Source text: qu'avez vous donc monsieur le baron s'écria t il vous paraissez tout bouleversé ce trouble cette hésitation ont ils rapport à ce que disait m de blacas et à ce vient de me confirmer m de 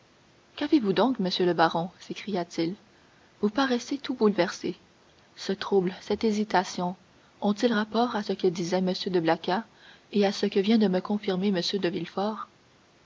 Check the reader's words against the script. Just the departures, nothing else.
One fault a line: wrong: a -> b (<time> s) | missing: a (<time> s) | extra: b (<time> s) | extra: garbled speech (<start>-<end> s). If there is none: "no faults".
extra: que (10.5 s)